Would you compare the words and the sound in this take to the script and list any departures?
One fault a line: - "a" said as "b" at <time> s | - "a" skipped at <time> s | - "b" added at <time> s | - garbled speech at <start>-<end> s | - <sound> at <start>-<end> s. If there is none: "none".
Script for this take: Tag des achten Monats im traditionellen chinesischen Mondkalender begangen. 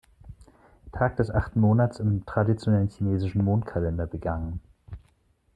none